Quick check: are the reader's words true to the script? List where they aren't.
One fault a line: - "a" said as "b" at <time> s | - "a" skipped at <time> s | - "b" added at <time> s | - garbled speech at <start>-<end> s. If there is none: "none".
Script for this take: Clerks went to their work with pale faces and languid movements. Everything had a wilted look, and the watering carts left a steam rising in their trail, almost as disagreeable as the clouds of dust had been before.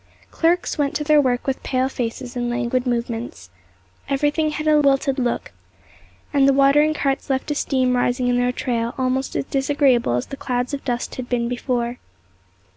none